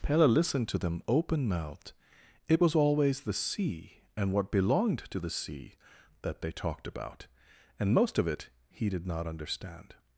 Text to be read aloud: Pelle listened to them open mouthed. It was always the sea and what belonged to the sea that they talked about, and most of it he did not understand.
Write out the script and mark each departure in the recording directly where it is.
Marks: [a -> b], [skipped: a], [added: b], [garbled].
Pelle listened to them open mouthed. It was always the sea and what belonged to the sea that they talked about, and most of it he did not understand.